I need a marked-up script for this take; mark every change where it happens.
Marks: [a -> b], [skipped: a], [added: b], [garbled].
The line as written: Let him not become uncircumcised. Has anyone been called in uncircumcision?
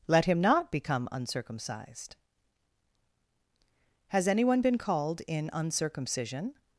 Let him not become uncircumcised. Has anyone been called in uncircumcision?